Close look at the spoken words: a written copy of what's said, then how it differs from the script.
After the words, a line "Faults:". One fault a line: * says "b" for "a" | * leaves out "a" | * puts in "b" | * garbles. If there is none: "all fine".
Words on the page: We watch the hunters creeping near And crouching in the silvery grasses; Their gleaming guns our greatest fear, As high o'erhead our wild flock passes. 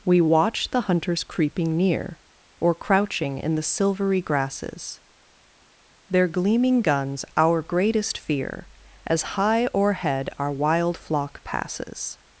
We watch the hunters creeping near Or crouching in the silvery grasses; Their gleaming guns our greatest fear, As high o'erhead our wild flock passes.
Faults:
* says "Or" for "And"